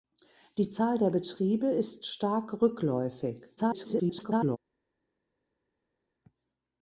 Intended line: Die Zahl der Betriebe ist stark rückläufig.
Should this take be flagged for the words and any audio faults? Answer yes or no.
yes